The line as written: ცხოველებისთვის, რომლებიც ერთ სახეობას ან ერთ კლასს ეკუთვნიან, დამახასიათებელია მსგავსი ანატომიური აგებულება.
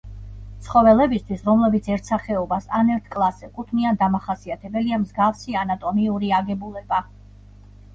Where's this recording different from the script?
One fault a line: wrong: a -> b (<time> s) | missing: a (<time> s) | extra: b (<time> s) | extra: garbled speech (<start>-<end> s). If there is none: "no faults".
no faults